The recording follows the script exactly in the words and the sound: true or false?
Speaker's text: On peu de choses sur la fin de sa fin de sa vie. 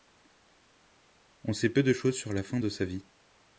false